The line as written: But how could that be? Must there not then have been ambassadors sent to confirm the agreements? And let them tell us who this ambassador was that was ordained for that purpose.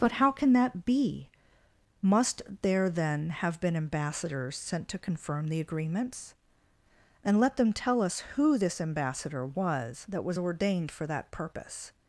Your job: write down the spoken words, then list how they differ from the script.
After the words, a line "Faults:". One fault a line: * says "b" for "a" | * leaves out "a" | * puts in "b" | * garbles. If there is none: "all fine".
But how can that be? Must there then have been ambassadors sent to confirm the agreements? And let them tell us who this ambassador was that was ordained for that purpose.
Faults:
* says "can" for "could"
* leaves out "not"